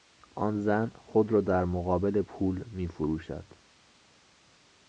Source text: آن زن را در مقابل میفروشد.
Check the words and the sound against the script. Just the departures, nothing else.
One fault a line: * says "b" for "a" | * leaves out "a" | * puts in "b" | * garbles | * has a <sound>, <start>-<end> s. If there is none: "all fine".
* puts in "خود"
* puts in "پول"